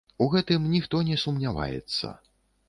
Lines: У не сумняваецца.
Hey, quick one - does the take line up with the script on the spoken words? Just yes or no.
no